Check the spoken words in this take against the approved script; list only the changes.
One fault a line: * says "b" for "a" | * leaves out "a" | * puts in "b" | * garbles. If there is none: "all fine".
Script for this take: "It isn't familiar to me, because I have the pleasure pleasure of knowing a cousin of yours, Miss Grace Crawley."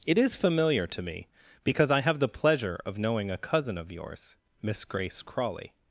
* says "is" for "isn't"
* leaves out "pleasure"